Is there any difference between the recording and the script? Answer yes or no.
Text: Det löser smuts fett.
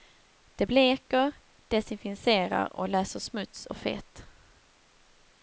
yes